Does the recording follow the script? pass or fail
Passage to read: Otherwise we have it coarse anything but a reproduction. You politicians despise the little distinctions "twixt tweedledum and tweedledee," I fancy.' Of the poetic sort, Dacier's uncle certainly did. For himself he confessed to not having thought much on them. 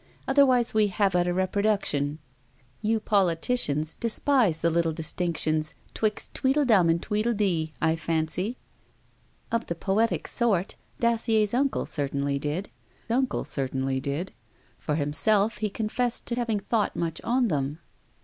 fail